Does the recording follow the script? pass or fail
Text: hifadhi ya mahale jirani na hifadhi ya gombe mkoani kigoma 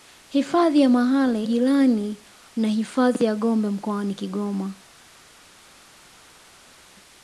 pass